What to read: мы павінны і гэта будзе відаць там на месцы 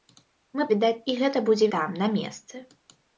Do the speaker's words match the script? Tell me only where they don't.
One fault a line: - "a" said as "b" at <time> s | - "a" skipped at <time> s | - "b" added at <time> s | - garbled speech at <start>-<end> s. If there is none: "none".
- "павінны" said as "відаць" at 0.7 s
- "відаць" skipped at 1.7 s